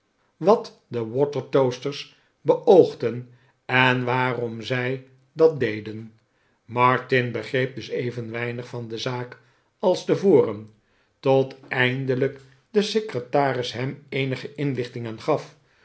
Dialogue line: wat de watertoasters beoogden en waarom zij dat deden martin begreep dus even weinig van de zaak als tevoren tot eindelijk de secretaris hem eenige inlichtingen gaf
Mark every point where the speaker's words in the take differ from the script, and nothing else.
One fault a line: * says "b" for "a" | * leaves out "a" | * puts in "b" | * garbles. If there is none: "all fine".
all fine